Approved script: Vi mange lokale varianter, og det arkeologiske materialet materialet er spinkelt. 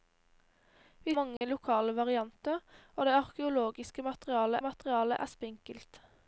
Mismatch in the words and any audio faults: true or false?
true